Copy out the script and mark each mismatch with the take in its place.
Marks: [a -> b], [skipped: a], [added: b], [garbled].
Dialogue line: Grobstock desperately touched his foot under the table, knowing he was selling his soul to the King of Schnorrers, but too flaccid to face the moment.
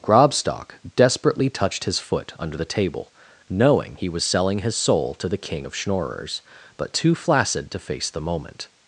Grobstock desperately touched his foot under the table, knowing he was selling his soul to the King of Schnorrers, but too flaccid to face the moment.